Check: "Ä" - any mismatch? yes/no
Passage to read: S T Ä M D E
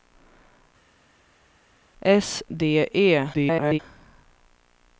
yes